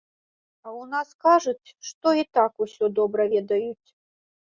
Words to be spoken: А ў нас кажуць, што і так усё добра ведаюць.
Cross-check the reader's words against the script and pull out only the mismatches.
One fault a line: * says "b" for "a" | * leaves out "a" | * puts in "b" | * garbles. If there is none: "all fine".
all fine